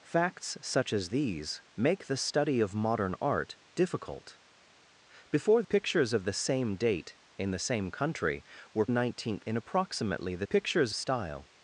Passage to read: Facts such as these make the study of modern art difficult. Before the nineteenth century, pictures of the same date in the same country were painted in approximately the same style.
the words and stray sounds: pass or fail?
fail